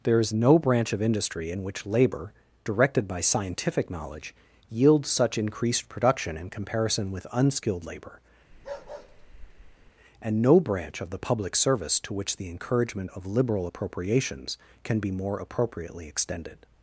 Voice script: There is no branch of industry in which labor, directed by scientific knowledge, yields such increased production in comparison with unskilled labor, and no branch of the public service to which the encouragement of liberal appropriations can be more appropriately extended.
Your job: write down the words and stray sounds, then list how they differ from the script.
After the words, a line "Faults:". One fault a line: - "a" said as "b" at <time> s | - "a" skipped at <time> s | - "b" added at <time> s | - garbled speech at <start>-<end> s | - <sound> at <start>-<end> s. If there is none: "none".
There is no branch of industry in which labor, directed by scientific knowledge, yields such increased production in comparison with unskilled labor, and no branch of the public service to which the encouragement of liberal appropriations can be more appropriately extended.
Faults:
- bark at 8.5-9.9 s